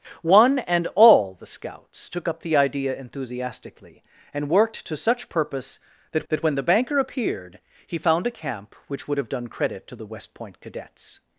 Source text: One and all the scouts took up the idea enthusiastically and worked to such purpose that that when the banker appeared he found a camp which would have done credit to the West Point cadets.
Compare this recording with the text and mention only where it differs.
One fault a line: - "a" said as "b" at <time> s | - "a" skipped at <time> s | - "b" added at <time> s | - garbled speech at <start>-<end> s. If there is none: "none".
none